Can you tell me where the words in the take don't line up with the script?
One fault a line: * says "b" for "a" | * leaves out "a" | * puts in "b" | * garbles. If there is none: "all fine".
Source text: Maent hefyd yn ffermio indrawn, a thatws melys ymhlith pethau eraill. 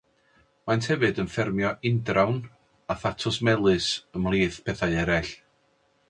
all fine